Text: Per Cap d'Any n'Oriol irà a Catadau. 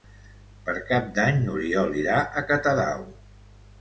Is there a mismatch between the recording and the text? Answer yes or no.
no